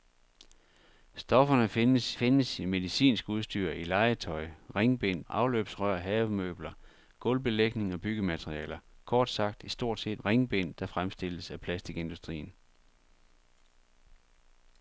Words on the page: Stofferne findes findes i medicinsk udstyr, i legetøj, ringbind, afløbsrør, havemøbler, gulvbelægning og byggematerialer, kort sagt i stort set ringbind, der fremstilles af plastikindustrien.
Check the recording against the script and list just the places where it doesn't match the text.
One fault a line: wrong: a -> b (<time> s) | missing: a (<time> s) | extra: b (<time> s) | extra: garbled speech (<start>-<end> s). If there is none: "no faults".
no faults